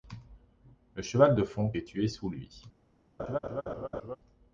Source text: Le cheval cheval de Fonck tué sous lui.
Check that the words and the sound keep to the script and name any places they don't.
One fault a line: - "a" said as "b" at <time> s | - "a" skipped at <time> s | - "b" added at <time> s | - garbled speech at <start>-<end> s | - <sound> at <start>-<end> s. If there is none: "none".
- "cheval" skipped at 1.4 s
- "est" added at 1.7 s
- laugh at 3.2-4.2 s